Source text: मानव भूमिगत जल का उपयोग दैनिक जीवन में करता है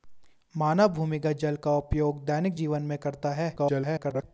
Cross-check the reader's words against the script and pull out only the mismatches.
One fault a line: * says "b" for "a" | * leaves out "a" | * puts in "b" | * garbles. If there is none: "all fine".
* garbles